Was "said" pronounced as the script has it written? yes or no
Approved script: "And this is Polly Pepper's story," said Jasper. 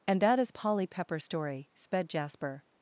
no